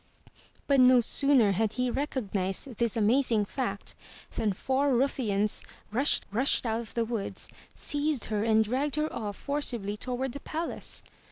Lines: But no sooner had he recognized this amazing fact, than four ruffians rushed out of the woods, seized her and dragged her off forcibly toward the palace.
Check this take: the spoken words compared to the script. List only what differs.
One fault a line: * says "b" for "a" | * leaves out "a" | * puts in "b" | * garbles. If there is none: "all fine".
* puts in "rushed"